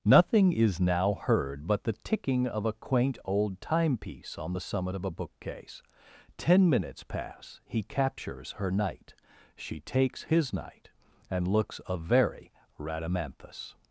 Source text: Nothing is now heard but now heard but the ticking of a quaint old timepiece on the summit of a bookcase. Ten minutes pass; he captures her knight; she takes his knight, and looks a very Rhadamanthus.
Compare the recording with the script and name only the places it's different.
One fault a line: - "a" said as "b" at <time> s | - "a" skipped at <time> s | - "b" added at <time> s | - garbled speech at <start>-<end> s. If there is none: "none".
- "now heard but" skipped at 1.8 s